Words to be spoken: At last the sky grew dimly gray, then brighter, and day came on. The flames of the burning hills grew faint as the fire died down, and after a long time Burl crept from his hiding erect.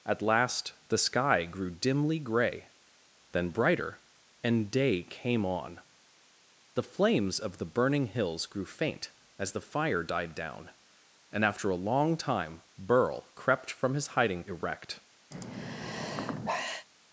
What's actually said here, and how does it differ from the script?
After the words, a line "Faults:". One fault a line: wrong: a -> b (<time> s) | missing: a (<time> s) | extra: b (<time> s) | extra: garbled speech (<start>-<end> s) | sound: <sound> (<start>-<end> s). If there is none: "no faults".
At last the sky grew dimly gray, then brighter, and day came on. The flames of the burning hills grew faint as the fire died down, and after a long time Burl crept from his hiding erect.
Faults:
sound: sigh (15.3-16.9 s)